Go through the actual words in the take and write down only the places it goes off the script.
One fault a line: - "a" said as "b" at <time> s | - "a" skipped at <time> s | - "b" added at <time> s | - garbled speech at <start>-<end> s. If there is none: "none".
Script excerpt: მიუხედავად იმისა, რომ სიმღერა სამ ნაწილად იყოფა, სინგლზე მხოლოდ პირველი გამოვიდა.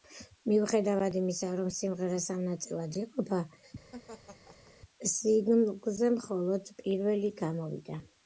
none